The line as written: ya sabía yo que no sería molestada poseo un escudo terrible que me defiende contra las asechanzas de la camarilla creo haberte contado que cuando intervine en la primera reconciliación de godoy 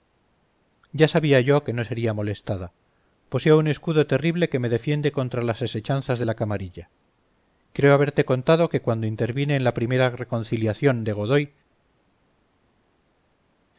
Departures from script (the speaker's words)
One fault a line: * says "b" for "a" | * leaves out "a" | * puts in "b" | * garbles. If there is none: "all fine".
all fine